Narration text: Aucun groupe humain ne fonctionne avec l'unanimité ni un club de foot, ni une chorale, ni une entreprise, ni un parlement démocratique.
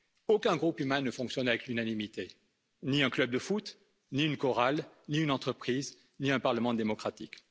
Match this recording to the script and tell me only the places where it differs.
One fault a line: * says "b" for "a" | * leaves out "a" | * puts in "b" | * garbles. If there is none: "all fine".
all fine